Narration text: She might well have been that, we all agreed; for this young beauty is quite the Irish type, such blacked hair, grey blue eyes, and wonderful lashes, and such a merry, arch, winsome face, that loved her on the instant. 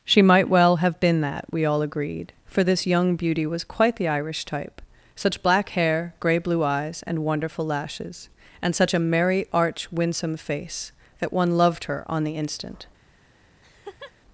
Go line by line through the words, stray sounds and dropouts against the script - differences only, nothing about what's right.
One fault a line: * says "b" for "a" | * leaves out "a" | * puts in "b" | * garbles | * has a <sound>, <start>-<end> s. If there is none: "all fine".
* says "was" for "is"
* says "black" for "blacked"
* puts in "one"
* has a laugh, 13.6-14.1 s